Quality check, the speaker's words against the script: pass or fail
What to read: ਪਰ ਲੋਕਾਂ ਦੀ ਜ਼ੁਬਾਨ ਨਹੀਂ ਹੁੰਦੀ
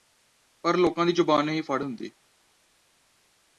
fail